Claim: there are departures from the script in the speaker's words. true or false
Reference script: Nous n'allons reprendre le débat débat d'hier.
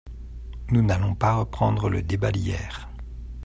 true